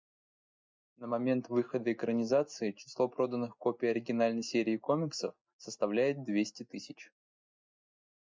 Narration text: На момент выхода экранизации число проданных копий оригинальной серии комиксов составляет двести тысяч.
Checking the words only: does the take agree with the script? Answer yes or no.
yes